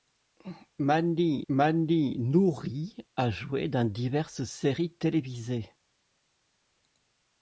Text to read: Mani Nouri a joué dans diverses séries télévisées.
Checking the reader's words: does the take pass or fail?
fail